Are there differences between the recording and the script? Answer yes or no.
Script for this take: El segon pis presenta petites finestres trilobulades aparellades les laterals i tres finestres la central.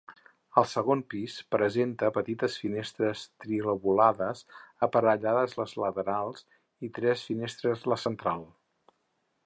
no